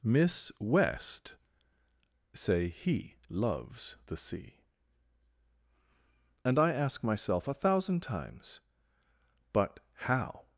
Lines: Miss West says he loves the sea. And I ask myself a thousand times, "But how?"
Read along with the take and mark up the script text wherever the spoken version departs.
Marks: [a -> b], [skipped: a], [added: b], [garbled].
Miss West [says -> say] he loves the sea. And I ask myself a thousand times, "But how?"